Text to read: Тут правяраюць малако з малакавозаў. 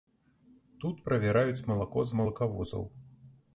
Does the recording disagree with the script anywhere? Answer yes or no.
no